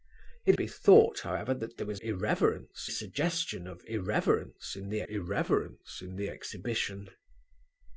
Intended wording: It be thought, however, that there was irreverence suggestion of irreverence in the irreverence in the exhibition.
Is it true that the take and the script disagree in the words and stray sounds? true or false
false